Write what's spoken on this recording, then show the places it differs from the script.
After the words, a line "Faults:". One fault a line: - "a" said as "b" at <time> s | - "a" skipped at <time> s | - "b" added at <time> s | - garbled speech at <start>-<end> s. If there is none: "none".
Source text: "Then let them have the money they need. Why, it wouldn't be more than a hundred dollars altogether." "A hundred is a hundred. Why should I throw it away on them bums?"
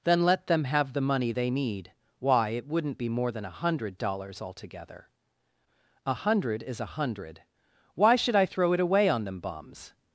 "Then let them have the money they need. Why, it wouldn't be more than a hundred dollars altogether." "A hundred is a hundred. Why should I throw it away on them bums?"
Faults:
none